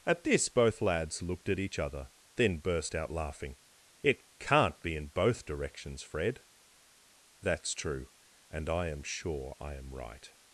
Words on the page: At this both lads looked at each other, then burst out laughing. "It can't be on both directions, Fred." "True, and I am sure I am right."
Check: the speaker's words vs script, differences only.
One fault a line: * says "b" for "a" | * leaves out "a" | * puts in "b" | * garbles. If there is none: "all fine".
* says "in" for "on"
* puts in "That's"